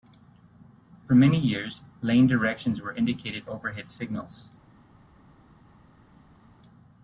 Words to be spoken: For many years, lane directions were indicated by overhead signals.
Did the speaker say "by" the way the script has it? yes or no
no